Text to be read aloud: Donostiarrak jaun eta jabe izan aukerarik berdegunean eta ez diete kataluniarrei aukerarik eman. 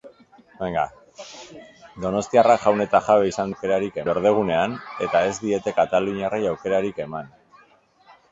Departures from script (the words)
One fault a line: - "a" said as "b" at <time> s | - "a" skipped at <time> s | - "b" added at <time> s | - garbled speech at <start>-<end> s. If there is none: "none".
none